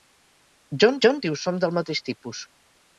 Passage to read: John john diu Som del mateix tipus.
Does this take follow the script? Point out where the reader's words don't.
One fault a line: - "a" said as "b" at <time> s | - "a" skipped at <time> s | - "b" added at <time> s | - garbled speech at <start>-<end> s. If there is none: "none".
none